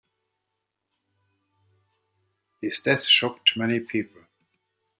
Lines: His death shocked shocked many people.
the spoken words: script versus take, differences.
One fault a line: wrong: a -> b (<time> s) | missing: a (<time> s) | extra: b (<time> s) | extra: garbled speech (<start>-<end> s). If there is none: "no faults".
missing: shocked (3.5 s)